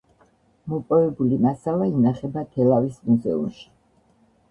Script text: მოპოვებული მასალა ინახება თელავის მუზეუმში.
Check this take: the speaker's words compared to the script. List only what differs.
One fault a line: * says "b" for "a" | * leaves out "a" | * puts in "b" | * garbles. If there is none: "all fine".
all fine